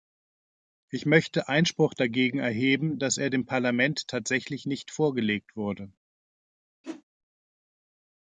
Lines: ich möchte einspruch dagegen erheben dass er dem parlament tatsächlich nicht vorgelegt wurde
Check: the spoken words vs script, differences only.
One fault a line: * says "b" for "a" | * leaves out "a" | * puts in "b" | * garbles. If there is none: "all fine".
all fine